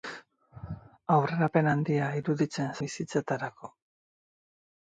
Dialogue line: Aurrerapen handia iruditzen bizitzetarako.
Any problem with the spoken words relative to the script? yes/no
no